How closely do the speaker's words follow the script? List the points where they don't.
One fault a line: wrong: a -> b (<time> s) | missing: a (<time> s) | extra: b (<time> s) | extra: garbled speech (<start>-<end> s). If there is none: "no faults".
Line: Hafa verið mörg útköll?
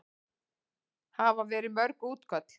no faults